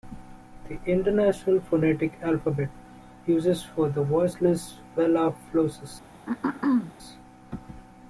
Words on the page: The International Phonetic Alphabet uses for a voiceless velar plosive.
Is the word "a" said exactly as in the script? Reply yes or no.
no